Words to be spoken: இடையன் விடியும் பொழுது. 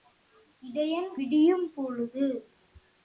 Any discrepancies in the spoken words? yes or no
no